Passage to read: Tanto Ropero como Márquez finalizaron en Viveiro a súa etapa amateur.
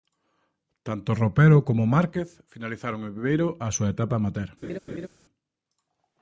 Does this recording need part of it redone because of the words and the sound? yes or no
yes